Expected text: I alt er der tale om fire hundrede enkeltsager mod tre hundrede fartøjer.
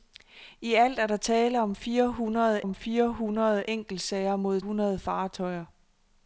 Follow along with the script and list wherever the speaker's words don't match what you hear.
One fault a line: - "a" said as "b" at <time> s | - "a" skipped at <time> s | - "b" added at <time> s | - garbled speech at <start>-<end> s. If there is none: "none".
- "om fire hundrede" added at 2.6 s
- "tre" skipped at 4.6 s